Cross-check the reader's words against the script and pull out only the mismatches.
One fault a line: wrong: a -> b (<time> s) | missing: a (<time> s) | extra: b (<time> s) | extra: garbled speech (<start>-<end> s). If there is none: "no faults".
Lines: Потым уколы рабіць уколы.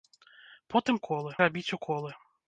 no faults